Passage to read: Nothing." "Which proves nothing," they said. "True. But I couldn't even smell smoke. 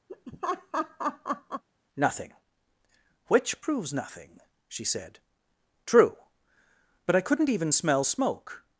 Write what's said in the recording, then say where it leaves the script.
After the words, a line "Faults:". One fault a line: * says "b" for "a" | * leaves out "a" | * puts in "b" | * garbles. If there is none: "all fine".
Nothing." "Which proves nothing," she said. "True. But I couldn't even smell smoke.
Faults:
* says "she" for "they"